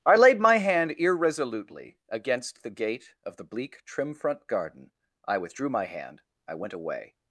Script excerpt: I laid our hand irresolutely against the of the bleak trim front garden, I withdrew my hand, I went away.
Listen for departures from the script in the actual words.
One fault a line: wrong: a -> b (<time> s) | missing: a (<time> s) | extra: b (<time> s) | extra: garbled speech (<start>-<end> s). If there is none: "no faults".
wrong: our -> my (0.4 s)
extra: gate (2.7 s)